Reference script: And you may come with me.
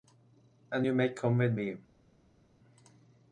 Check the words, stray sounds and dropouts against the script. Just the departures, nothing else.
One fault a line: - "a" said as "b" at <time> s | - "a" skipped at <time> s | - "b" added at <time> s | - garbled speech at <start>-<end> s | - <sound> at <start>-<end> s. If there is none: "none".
none